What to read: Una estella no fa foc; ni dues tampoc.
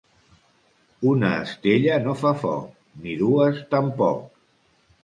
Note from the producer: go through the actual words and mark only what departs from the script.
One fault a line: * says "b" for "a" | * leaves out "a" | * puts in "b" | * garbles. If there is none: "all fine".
all fine